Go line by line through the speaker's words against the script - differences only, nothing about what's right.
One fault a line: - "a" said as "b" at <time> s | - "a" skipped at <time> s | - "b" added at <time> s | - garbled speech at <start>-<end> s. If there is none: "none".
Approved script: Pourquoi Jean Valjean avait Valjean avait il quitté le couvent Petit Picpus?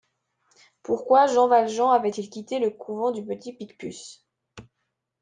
- "Valjean avait" skipped at 2.1 s
- "du" added at 3.1 s